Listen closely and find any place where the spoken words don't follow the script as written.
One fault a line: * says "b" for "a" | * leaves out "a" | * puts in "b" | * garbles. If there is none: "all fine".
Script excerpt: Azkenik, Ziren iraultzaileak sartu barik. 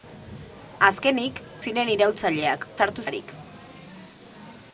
all fine